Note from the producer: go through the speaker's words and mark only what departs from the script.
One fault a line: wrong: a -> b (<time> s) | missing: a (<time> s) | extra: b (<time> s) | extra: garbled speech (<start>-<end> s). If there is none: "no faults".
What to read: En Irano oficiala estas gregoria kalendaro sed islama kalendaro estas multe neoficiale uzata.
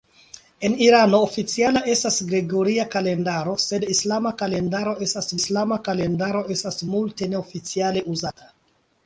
extra: islama kalendaro estas (5.4 s)